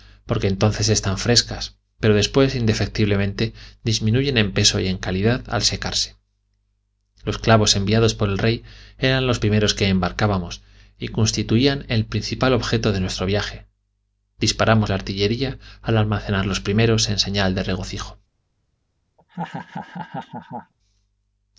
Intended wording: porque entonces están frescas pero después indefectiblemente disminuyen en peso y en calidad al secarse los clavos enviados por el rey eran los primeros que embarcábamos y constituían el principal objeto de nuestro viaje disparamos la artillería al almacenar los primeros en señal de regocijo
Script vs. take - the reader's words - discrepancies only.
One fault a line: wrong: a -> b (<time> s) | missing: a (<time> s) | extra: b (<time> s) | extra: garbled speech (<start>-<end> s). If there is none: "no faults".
no faults